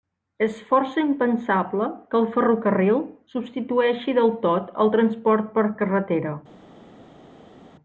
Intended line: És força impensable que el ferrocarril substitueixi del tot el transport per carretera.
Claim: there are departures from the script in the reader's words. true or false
false